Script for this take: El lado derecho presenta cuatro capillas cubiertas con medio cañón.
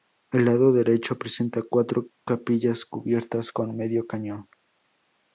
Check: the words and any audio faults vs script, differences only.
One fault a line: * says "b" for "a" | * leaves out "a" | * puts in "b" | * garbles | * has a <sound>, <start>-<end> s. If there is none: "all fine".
all fine